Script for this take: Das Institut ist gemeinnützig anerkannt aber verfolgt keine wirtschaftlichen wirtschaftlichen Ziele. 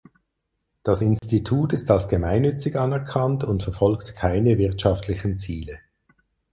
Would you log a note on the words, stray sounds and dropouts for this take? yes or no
yes